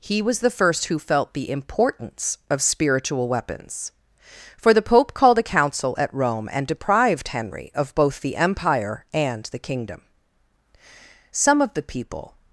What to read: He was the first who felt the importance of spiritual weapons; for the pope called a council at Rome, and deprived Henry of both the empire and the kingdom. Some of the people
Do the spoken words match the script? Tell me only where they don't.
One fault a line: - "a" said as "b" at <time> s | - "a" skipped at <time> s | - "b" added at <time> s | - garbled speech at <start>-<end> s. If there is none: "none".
none